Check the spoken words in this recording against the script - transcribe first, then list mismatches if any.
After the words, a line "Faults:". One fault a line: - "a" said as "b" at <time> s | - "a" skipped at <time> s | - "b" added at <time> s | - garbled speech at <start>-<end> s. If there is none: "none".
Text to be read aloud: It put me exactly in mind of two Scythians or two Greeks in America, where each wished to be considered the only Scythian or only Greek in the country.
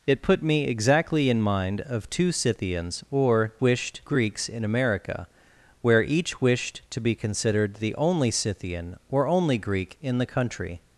It put me exactly in mind of two Scythians or wished Greeks in America, where each wished to be considered the only Scythian or only Greek in the country.
Faults:
- "two" said as "wished" at 3.6 s